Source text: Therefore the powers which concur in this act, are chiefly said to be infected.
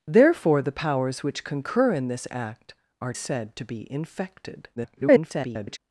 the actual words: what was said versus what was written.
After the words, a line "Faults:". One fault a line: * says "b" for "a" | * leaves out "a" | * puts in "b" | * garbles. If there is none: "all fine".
Therefore the powers which concur in this act, are said to be infected. [garbled]
Faults:
* leaves out "chiefly"
* garbles